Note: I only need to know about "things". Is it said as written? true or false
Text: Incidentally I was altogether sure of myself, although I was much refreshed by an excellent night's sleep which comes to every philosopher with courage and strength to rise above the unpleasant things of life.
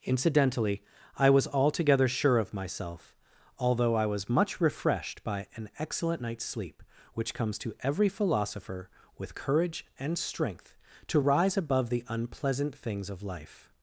true